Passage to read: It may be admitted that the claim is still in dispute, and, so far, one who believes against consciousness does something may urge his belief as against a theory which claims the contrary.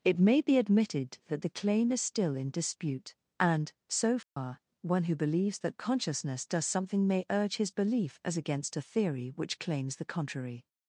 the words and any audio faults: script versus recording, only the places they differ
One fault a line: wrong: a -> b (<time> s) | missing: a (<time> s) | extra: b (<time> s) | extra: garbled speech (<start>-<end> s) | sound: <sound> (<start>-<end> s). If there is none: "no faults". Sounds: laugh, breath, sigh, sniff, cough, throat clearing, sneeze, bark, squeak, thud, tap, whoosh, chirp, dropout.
sound: dropout (4.2-4.4 s)
wrong: against -> that (5.6 s)